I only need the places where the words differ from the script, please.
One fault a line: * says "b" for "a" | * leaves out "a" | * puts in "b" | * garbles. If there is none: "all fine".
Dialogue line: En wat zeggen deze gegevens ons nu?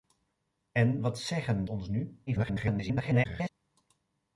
* leaves out "deze gegevens"
* garbles